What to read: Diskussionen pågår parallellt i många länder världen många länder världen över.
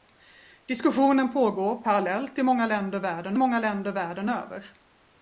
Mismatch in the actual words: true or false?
false